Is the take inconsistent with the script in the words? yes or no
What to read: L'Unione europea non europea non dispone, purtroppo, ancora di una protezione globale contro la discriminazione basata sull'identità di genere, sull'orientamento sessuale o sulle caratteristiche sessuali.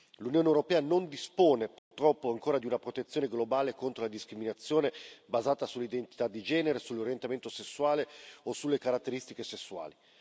yes